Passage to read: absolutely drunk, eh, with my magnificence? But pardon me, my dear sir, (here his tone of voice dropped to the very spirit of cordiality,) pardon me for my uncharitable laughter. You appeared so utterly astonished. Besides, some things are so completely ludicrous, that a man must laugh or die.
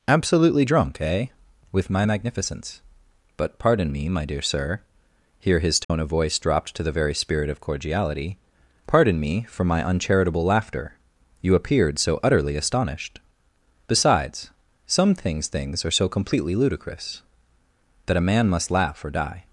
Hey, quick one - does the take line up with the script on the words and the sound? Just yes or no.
no